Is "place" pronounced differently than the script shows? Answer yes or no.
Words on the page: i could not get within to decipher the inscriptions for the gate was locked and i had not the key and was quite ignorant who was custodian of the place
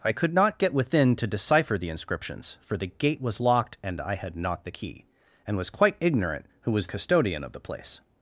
no